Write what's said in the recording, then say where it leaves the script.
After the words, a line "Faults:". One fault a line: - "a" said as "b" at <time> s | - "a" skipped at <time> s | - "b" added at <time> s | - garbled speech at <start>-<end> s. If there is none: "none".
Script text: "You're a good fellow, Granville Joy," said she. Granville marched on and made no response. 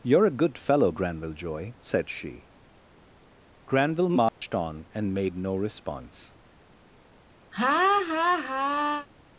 "You're a good fellow, Granville Joy," said she. Granville marched on and made no response.
Faults:
none